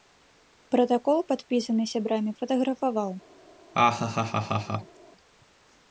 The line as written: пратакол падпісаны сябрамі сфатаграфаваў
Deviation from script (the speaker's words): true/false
false